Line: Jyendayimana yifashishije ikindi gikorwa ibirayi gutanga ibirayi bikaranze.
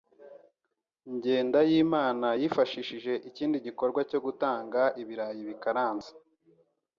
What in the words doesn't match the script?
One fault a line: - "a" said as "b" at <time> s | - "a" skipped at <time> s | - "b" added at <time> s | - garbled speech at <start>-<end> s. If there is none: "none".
- "ibirayi" said as "cyo" at 4.1 s